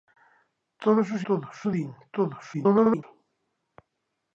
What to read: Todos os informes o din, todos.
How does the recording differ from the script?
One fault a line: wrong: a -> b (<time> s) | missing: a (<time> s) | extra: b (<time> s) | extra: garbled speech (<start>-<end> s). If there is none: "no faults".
wrong: informes -> todos (1.3 s)
extra: garbled speech (2.5-3.0 s)